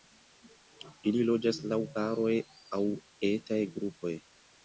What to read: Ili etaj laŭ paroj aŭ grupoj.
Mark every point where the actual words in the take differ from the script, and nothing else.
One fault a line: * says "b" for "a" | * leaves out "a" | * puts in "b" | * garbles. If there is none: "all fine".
* says "loĝas" for "etaj"
* puts in "etaj"